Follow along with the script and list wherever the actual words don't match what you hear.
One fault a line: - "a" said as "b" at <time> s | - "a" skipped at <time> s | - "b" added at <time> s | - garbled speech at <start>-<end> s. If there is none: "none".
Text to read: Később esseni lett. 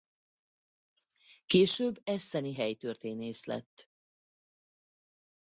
- "helytörténész" added at 2.5 s